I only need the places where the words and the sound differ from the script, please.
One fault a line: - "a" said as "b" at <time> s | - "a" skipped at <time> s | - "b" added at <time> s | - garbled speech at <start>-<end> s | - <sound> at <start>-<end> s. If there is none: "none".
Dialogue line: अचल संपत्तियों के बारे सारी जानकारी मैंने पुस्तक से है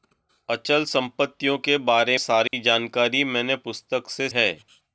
- dropout at 2.5-2.5 s